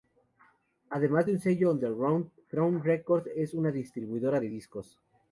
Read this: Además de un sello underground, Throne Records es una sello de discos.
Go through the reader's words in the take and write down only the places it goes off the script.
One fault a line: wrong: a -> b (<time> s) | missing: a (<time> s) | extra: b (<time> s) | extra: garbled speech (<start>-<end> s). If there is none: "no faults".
wrong: sello -> distribuidora (3.7 s)